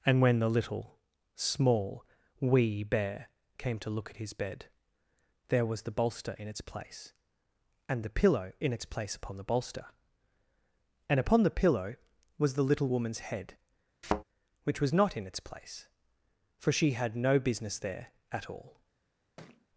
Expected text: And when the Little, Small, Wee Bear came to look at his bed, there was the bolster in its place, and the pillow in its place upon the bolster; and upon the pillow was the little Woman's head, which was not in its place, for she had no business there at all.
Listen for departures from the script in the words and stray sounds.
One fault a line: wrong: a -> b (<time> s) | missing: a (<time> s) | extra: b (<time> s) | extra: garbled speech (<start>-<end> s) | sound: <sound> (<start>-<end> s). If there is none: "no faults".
sound: thud (14.0-14.2 s)
sound: thud (19.4-19.7 s)